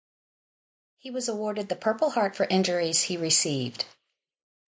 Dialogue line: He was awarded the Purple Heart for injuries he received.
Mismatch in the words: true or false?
false